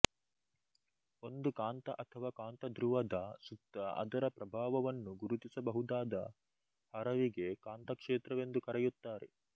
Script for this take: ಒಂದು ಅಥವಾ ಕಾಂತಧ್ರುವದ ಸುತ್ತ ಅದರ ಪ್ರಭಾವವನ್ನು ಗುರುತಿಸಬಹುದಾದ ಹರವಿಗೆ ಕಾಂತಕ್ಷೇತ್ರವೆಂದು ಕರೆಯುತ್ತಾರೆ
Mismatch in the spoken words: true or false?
true